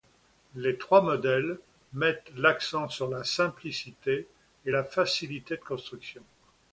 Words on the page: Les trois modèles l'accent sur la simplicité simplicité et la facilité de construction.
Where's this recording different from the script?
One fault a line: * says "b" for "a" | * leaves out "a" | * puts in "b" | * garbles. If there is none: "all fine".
* puts in "mettent"
* leaves out "simplicité"